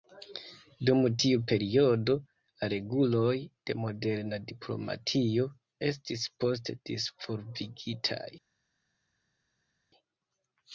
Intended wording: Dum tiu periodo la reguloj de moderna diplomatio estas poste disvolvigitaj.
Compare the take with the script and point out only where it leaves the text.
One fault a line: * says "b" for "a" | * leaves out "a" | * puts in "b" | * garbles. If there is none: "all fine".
* says "estis" for "estas"